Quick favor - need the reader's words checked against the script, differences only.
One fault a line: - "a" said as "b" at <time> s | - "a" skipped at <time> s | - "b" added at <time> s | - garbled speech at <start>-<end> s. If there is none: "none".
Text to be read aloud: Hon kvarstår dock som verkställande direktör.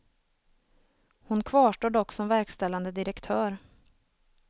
none